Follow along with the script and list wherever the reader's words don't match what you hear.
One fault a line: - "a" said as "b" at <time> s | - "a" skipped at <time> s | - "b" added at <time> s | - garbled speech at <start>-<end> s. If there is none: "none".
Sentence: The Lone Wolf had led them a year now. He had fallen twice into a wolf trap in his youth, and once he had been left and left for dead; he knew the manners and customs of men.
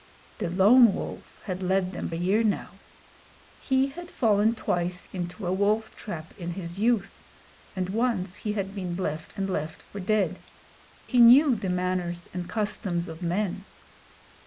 none